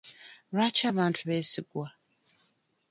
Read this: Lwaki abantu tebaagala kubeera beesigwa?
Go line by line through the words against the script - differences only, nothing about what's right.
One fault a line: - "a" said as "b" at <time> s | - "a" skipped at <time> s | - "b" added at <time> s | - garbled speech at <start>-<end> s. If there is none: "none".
- "tebaagala kubeera" skipped at 1.2 s